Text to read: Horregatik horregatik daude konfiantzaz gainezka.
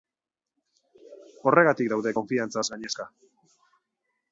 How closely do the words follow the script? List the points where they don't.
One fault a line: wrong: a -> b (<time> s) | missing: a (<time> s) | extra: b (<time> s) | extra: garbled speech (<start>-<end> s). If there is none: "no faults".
missing: horregatik (1.9 s)